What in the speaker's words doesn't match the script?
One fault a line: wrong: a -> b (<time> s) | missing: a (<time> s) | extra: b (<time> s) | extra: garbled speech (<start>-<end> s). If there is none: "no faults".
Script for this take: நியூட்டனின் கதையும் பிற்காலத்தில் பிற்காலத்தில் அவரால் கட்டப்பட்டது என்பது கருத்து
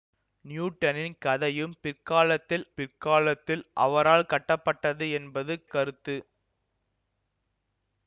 no faults